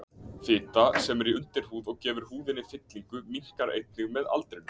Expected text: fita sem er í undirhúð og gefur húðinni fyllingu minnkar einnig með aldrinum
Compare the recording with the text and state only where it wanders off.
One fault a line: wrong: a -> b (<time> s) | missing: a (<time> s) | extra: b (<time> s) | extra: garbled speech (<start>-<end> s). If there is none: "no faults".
no faults